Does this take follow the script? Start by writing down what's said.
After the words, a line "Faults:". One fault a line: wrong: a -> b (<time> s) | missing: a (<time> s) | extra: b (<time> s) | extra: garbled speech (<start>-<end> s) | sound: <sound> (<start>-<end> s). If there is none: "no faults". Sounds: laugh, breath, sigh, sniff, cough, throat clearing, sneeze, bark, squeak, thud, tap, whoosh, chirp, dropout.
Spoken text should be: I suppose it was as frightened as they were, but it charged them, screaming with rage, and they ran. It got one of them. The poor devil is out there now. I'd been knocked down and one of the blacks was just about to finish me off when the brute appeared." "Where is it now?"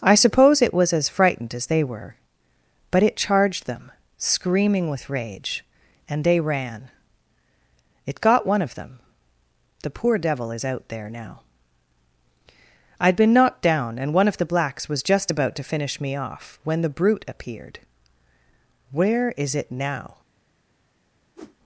I suppose it was as frightened as they were, but it charged them, screaming with rage, and they ran. It got one of them. The poor devil is out there now. I'd been knocked down and one of the blacks was just about to finish me off when the brute appeared." "Where is it now?"
Faults:
sound: whoosh (21.4-21.6 s)